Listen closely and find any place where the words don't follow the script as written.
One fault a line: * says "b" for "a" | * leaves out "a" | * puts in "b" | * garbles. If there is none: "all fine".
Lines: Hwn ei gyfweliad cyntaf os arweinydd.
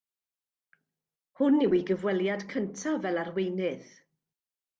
* puts in "yw"
* says "fel" for "os"